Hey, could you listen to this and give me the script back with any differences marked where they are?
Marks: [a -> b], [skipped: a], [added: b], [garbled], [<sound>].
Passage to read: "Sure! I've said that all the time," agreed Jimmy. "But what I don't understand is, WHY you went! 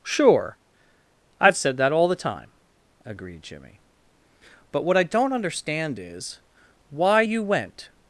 "Sure! I've said that all the time," agreed Jimmy. "But what I don't understand is, WHY you went!